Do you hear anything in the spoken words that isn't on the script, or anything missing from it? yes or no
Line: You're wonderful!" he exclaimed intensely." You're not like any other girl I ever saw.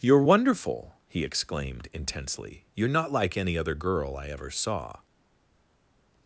no